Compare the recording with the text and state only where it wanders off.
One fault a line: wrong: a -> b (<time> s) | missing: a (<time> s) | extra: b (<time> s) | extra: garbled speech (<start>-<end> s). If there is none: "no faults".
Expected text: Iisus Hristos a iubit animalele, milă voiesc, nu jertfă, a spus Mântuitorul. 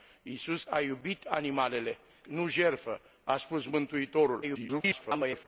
missing: Hristos (0.7 s)
missing: milă voiesc (2.0 s)
extra: garbled speech (4.4-5.5 s)